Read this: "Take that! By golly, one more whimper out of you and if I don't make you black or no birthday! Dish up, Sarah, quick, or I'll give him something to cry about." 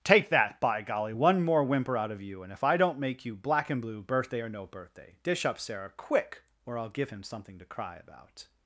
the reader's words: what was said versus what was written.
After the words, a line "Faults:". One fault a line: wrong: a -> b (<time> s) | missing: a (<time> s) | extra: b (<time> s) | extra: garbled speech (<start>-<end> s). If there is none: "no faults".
"Take that! By golly, one more whimper out of you and if I don't make you black and blue, birthday or no birthday! Dish up, Sarah, quick, or I'll give him something to cry about."
Faults:
extra: and blue birthday (3.7 s)